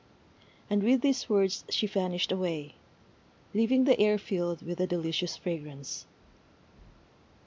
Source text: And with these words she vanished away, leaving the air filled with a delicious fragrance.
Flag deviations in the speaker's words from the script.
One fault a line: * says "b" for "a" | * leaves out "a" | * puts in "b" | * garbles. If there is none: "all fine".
all fine